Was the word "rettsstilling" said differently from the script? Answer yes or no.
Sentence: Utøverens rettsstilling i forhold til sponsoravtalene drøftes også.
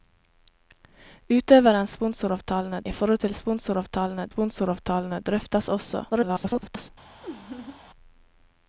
yes